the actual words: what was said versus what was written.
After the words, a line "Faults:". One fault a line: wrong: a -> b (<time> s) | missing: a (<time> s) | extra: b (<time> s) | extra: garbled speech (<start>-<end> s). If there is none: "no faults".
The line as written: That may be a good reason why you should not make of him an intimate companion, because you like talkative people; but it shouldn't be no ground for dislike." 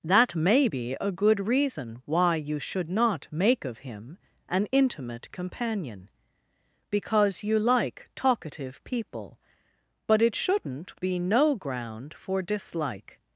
That may be a good reason why you should not make of him an intimate companion, because you like talkative people; but it shouldn't be no ground for dislike."
Faults:
no faults